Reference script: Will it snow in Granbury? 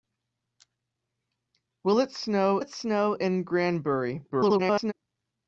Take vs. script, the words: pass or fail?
fail